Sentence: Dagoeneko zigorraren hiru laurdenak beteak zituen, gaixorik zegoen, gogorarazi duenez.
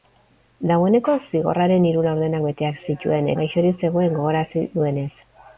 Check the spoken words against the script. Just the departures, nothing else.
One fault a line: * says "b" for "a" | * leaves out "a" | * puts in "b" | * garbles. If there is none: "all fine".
all fine